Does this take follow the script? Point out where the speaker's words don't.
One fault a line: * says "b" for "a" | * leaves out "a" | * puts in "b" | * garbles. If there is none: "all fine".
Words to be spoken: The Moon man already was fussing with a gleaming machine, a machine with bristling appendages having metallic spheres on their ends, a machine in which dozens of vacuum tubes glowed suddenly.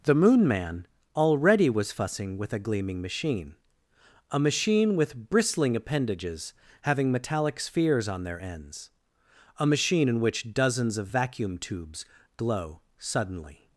* says "glow" for "glowed"